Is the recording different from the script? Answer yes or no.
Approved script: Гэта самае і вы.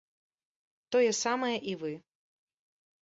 yes